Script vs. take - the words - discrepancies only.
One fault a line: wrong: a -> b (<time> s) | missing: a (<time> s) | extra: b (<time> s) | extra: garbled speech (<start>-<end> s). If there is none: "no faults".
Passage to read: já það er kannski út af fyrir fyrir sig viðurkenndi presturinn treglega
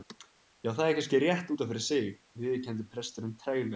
extra: rétt (1.2 s)
missing: fyrir (1.8 s)